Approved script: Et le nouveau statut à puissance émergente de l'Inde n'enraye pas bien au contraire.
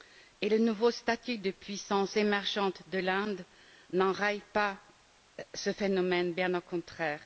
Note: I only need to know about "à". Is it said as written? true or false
false